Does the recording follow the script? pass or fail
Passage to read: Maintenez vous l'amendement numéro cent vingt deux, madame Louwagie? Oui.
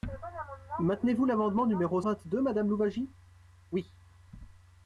fail